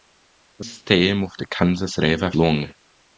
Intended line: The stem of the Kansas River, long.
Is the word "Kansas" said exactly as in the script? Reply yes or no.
yes